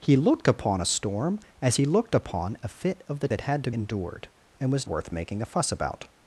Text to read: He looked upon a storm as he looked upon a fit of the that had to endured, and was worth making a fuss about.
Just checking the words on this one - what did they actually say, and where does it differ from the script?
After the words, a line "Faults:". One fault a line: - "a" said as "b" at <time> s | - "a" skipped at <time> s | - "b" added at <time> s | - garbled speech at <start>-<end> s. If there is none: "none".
He looked upon a storm as he looked upon a fit of the that had to endured, and was worth making a fuss about.
Faults:
none